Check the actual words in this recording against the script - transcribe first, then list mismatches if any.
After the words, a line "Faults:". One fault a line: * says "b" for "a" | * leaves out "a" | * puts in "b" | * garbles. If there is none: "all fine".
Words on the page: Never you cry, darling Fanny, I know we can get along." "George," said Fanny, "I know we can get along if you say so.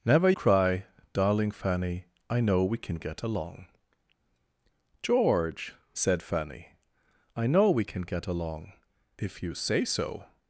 Never cry, darling Fanny, I know we can get along." "George," said Fanny, "I know we can get along if you say so.
Faults:
* leaves out "you"